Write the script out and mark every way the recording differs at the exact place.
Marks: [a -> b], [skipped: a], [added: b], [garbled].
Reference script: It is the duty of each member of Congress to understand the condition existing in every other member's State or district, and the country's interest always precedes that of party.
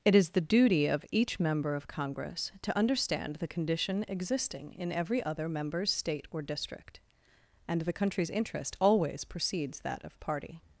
It is the duty of each member of Congress to understand the condition existing in every other member's State or district, and the country's interest always precedes that of party.